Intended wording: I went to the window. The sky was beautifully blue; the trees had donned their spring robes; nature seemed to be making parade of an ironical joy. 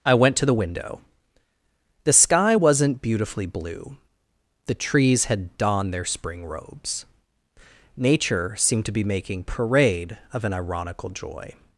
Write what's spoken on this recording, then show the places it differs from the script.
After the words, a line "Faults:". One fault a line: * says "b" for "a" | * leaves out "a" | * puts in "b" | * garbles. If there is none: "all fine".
I went to the window. The sky wasn't beautifully blue; the trees had donned their spring robes; nature seemed to be making parade of an ironical joy.
Faults:
* says "wasn't" for "was"